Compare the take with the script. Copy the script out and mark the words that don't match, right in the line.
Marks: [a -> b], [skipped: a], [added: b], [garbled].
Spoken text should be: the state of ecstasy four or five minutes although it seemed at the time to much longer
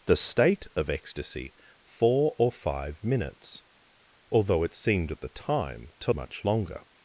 the state of ecstasy four or five minutes although it seemed at the time to much longer